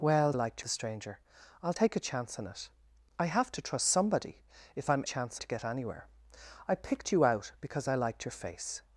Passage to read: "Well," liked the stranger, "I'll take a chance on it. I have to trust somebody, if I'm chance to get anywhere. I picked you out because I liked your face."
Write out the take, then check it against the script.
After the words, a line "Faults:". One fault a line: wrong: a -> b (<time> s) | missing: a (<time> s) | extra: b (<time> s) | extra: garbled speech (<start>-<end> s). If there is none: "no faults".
"Well," liked the stranger, "I'll take a chance on it. I have to trust somebody, if I'm chance to get anywhere. I picked you out because I liked your face."
Faults:
no faults